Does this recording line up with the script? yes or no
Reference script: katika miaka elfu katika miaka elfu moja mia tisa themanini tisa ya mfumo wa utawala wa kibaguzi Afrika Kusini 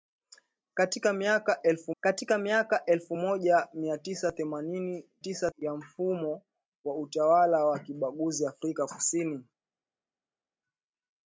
yes